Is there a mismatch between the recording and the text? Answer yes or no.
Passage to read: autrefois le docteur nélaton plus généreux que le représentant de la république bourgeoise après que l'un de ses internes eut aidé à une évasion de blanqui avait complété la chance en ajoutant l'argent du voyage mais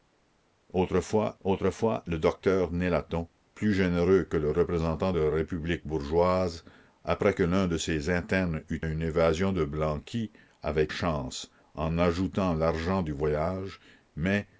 yes